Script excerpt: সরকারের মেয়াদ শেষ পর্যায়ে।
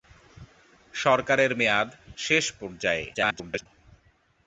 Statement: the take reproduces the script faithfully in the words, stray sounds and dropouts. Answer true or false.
false